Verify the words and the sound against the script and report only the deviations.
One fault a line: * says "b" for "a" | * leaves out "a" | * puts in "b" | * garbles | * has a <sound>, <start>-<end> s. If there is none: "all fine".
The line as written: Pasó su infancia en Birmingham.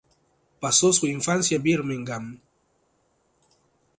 all fine